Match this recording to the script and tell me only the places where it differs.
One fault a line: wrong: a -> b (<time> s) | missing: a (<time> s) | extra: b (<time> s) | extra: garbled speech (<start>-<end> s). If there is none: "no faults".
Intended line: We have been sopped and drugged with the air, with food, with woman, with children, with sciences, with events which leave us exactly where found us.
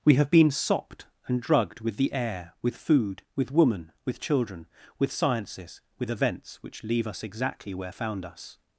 no faults